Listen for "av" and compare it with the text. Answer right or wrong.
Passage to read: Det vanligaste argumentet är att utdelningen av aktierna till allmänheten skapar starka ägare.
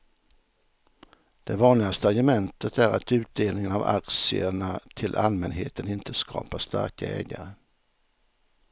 right